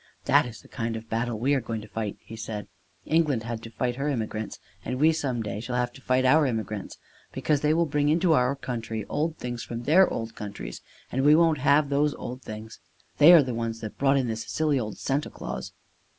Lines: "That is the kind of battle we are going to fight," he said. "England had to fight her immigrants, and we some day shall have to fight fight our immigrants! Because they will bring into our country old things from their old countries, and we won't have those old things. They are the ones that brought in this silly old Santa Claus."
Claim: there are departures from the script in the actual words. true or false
true